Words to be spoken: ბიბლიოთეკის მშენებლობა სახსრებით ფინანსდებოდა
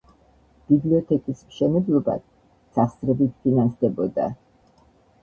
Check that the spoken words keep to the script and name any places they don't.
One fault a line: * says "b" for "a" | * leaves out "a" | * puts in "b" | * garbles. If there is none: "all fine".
all fine